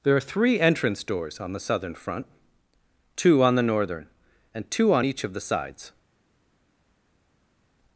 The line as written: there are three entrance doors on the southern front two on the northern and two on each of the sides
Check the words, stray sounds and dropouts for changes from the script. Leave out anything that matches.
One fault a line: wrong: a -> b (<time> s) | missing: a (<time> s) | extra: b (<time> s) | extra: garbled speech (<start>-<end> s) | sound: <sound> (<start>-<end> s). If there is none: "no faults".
no faults